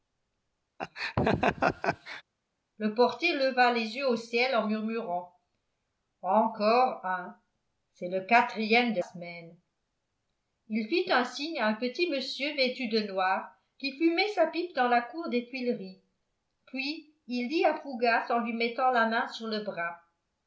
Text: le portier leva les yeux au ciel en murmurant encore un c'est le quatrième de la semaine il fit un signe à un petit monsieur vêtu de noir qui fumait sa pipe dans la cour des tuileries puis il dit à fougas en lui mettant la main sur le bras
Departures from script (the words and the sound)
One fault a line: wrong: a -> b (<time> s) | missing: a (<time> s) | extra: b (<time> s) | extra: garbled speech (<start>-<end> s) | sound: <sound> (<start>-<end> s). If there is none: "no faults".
sound: laugh (0.8-2.2 s)
missing: la (9.0 s)